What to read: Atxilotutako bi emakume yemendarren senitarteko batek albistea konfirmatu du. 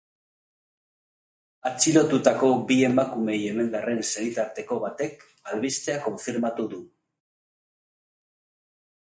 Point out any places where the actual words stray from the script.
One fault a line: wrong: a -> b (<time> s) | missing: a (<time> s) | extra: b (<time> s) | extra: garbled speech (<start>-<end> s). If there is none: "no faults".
no faults